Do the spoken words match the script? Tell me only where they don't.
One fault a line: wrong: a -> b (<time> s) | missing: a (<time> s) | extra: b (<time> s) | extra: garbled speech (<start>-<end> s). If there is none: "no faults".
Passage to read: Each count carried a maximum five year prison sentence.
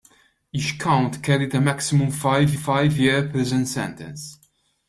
extra: five (2.5 s)